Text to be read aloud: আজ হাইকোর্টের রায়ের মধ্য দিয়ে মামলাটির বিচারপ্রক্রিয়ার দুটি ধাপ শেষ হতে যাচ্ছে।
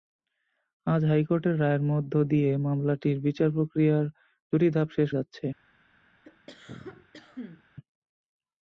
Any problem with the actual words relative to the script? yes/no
yes